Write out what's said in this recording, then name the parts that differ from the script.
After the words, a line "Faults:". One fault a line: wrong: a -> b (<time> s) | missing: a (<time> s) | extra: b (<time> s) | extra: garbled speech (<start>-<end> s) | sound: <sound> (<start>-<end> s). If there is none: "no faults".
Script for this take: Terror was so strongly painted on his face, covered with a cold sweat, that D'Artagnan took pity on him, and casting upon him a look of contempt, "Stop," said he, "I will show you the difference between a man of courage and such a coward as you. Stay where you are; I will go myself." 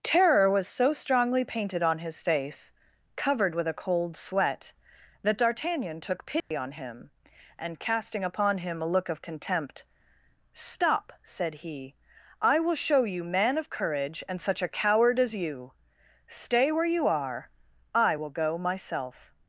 Terror was so strongly painted on his face, covered with a cold sweat, that D'Artagnan took pity on him, and casting upon him a look of contempt, "Stop," said he, "I will show you man of courage and such a coward as you. Stay where you are; I will go myself."
Faults:
sound: dropout (6.4-6.5 s)
missing: the difference between a (13.2 s)